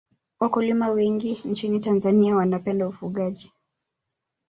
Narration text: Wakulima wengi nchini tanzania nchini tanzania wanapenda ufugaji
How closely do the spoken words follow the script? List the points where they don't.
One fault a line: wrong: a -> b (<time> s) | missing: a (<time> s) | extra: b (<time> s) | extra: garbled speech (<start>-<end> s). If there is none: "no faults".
missing: nchini tanzania (2.4 s)